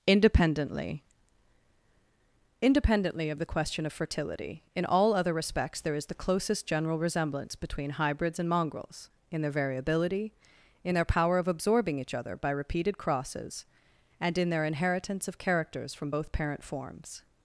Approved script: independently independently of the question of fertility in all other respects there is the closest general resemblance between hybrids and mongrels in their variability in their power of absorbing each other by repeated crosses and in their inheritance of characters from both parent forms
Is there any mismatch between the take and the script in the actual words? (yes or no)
no